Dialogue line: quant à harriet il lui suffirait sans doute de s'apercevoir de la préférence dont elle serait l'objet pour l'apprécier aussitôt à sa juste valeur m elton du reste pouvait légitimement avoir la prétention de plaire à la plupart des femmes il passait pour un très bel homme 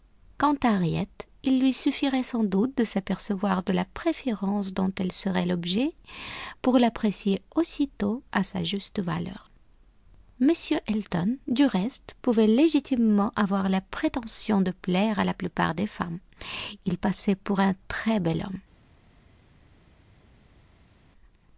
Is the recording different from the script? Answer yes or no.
no